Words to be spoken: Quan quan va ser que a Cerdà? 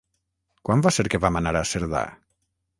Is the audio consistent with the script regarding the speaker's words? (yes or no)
no